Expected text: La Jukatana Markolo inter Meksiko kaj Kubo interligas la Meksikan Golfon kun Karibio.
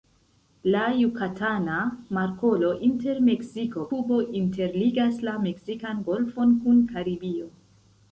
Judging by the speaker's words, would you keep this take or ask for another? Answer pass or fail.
fail